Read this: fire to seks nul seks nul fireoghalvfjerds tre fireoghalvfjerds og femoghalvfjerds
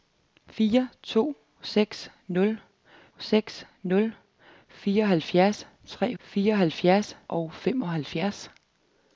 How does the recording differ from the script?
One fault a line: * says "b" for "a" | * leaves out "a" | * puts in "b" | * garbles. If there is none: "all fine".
all fine